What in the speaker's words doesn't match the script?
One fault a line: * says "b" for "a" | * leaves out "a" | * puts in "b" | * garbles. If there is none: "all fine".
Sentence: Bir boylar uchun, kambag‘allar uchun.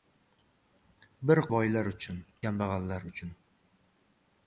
all fine